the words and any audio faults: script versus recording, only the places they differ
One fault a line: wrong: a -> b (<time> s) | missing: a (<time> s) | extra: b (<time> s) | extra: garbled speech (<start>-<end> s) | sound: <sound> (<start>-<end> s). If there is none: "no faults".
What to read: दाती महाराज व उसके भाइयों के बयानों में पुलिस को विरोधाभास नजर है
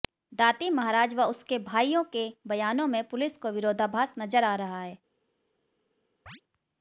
extra: आ रहा (4.4 s)
sound: chirp (6.3-6.4 s)